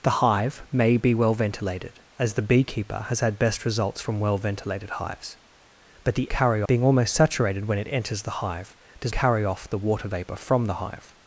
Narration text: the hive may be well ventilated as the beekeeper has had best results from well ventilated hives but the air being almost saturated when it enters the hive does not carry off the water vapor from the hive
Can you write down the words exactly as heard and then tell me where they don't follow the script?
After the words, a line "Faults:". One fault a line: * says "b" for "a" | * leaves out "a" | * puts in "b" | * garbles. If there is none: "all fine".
the hive may be well ventilated as the beekeeper has had best results from well ventilated hives but the carry being almost saturated when it enters the hive does carry off the water vapor from the hive
Faults:
* says "carry" for "air"
* leaves out "not"